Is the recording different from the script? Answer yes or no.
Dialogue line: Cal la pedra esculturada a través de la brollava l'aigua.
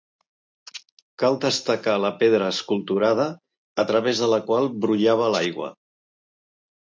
yes